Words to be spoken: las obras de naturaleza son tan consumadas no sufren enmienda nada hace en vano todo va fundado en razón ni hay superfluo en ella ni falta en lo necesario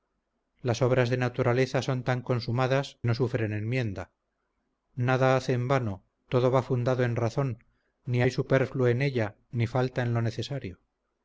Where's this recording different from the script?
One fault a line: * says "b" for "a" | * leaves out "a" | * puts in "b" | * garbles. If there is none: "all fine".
all fine